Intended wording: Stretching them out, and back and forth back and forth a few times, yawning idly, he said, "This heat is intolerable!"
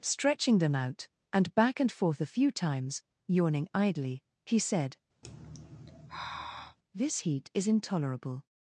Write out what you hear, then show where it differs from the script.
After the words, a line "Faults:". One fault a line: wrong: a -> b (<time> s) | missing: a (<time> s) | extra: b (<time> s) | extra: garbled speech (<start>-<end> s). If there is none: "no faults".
Stretching them out, and back and forth a few times, yawning idly, he said, "This heat is intolerable!"
Faults:
missing: back and forth (2.2 s)